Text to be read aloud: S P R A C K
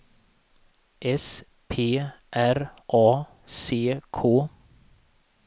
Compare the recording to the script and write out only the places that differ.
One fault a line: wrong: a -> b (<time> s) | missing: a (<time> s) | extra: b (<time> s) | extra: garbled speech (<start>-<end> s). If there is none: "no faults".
no faults